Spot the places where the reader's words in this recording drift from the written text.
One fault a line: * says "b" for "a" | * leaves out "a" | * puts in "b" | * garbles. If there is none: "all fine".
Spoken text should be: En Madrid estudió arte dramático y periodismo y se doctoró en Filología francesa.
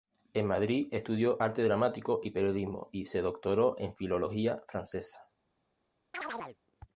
all fine